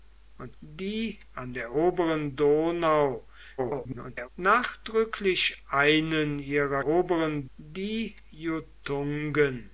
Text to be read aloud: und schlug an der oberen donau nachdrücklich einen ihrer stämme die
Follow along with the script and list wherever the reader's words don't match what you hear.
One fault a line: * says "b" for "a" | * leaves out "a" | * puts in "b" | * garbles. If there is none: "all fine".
* says "die" for "schlug"
* garbles
* says "oberen" for "stämme"